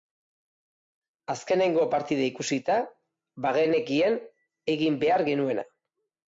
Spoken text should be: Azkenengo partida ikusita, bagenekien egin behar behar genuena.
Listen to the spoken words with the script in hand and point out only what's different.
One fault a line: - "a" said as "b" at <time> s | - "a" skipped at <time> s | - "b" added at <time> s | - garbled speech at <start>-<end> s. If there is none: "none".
- "behar" skipped at 5.3 s